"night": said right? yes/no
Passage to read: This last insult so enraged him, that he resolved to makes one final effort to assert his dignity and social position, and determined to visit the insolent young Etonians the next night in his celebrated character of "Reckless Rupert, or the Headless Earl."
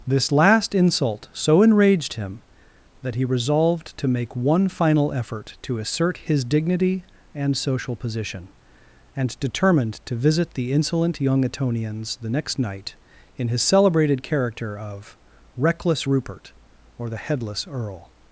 yes